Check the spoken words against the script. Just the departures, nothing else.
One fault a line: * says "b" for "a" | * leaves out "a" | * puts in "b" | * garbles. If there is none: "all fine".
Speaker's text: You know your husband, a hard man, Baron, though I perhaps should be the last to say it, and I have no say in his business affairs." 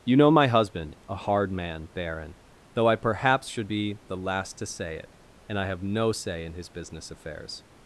* says "my" for "your"